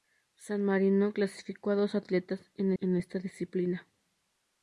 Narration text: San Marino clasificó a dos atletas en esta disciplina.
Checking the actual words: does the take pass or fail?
fail